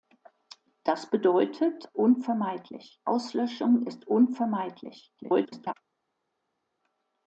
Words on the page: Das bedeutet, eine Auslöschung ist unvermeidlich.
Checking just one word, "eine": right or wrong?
wrong